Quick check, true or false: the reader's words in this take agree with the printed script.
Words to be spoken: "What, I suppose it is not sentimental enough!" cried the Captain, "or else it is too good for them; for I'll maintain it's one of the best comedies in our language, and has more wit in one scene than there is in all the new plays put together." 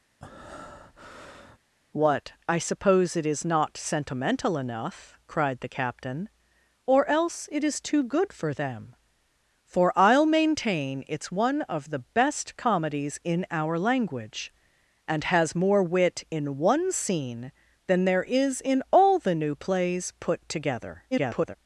false